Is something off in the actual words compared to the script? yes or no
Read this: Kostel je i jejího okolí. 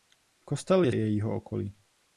no